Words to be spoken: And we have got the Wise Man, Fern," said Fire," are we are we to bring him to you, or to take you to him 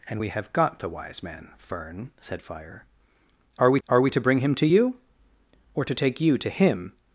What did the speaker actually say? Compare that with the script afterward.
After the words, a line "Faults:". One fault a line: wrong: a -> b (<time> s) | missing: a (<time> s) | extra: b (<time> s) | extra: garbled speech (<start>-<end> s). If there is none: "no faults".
And we have got the Wise Man, Fern," said Fire," are we are we to bring him to you, or to take you to him
Faults:
no faults